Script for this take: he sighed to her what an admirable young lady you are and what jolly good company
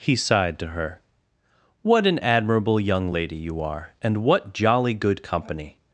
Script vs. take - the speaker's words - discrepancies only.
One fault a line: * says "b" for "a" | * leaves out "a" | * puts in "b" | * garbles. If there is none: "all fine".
all fine